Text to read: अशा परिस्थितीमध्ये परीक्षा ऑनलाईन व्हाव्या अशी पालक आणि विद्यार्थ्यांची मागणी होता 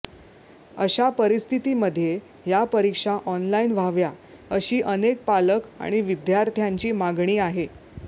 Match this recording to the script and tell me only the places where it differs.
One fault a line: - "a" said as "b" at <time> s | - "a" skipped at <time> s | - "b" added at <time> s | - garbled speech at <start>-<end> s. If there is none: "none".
- "या" added at 2.5 s
- "अनेक" added at 4.8 s
- "होता" said as "आहे" at 7.4 s